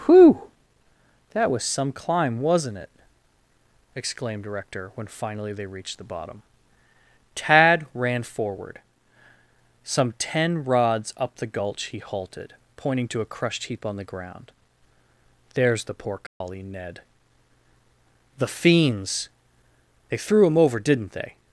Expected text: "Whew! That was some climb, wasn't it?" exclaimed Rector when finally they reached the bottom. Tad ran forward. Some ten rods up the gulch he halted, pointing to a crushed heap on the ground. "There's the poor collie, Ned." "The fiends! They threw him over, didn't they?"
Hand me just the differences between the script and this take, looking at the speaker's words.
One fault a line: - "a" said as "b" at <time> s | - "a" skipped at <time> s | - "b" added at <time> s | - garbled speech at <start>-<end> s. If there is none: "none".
none